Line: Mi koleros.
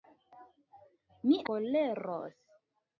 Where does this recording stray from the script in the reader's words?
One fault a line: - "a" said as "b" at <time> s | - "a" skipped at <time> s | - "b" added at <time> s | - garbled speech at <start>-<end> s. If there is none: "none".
none